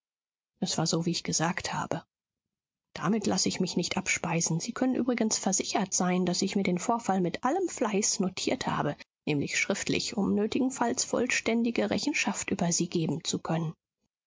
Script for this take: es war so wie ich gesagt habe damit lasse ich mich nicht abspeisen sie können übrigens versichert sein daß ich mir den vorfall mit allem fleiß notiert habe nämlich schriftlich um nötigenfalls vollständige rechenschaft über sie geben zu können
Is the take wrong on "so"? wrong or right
right